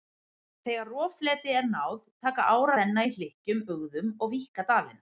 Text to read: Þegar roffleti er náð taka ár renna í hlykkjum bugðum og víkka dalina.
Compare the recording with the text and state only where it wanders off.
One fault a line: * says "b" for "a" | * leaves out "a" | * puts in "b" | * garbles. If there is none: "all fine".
all fine